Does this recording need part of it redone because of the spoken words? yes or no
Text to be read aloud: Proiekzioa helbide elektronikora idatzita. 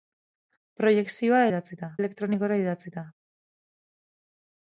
yes